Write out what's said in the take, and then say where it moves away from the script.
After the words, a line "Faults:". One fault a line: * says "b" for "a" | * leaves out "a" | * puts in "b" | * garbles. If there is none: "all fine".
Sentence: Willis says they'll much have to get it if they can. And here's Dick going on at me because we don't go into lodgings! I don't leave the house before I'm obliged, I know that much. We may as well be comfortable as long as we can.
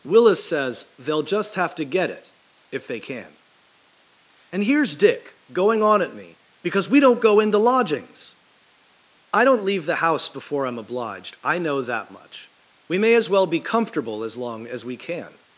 Willis says they'll just have to get it if they can. And here's Dick going on at me because we don't go into lodgings! I don't leave the house before I'm obliged, I know that much. We may as well be comfortable as long as we can.
Faults:
* says "just" for "much"